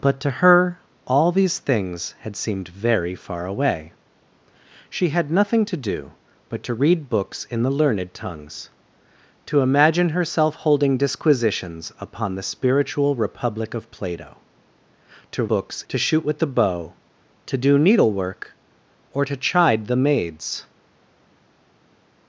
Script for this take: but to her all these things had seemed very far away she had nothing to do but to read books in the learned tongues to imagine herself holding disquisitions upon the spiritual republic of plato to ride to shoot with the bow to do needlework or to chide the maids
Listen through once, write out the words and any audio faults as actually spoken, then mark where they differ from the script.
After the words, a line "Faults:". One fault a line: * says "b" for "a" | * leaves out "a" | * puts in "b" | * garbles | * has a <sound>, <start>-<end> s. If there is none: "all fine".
but to her all these things had seemed very far away she had nothing to do but to read books in the learned tongues to imagine herself holding disquisitions upon the spiritual republic of plato to books to shoot with the bow to do needlework or to chide the maids
Faults:
* says "books" for "ride"